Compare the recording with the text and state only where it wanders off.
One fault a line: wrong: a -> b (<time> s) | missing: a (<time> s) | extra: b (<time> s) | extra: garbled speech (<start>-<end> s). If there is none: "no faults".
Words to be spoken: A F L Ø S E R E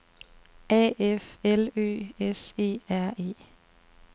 no faults